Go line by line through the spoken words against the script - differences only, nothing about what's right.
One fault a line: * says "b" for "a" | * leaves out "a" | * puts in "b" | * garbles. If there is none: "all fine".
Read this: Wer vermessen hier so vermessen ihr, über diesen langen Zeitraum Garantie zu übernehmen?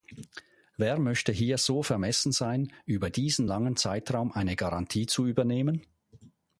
* says "möchte" for "vermessen"
* says "sein" for "ihr"
* puts in "eine"